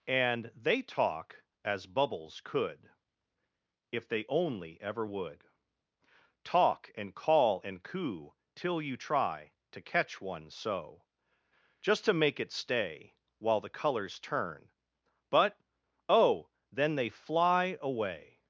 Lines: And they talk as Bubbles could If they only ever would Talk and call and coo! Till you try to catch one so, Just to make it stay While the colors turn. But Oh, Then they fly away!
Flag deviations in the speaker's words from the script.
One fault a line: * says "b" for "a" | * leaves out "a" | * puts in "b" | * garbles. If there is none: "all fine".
all fine